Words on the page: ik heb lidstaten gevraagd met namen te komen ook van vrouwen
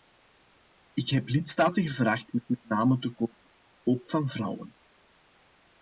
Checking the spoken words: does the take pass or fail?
fail